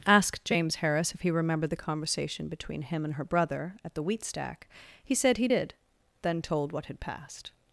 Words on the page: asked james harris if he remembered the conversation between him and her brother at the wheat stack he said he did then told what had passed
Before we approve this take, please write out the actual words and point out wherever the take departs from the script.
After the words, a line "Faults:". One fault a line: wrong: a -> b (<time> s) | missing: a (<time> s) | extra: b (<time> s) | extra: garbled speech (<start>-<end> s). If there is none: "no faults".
asked james harris if he remembered the conversation between him and her brother at the wheat stack he said he did then told what had passed
Faults:
no faults